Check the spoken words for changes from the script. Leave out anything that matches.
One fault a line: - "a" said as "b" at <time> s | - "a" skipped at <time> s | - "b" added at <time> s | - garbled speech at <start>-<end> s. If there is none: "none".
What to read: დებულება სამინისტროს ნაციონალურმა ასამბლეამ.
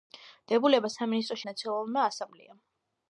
none